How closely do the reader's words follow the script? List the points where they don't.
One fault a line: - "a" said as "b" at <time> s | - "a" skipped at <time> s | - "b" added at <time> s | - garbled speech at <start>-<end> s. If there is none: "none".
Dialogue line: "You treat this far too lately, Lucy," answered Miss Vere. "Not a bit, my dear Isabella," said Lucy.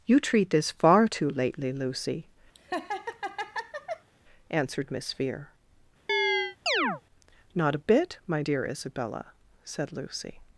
none